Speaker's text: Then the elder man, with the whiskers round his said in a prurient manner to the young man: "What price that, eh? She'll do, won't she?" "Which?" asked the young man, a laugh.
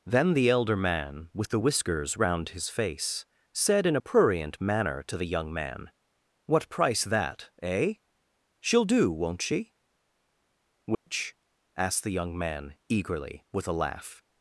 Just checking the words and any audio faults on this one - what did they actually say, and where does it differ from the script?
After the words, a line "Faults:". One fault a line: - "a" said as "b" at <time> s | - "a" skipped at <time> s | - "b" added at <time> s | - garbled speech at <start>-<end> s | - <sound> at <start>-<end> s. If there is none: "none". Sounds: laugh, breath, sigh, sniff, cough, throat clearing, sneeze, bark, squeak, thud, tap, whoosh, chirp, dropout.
Then the elder man, with the whiskers round his face, said in a prurient manner to the young man: "What price that, eh? She'll do, won't she?" "Which?" asked the young man, eagerly, with a laugh.
Faults:
- "face" added at 2.7 s
- dropout at 10.9-11.1 s
- "eagerly with" added at 12.9 s